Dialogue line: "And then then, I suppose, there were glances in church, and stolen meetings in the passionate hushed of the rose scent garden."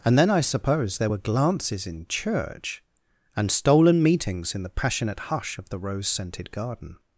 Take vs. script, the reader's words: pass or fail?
fail